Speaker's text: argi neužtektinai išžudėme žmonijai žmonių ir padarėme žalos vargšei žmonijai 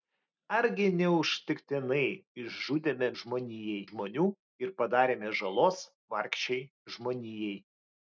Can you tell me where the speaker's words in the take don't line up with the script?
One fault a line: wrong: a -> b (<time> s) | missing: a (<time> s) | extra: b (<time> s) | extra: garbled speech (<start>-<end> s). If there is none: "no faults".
no faults